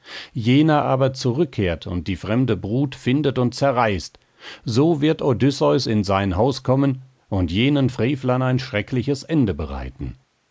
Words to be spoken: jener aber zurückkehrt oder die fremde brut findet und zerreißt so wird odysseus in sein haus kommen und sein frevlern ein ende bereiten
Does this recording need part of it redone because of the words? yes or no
yes